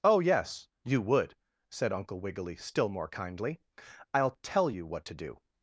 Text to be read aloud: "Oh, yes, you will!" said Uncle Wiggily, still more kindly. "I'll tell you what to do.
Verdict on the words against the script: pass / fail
fail